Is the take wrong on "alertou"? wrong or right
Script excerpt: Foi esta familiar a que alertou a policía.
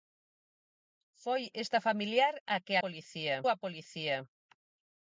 wrong